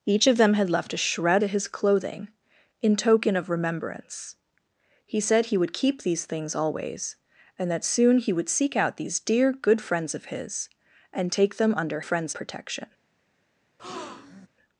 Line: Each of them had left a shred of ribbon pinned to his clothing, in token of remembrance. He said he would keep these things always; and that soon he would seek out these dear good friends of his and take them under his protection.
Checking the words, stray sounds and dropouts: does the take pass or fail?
fail